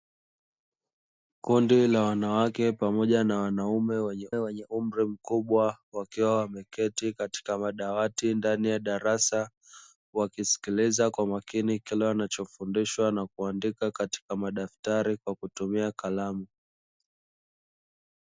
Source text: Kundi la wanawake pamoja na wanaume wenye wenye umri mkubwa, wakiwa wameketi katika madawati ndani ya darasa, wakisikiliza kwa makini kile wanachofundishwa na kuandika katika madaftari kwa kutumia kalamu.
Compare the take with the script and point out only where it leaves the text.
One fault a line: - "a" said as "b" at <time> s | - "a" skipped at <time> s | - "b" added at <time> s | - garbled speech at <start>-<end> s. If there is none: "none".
none